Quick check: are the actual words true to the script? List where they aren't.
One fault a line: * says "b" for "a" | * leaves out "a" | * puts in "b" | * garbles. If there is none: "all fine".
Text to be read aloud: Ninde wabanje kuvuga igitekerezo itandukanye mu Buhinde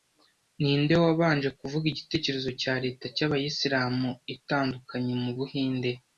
* puts in "cya leta y'abayisilamu"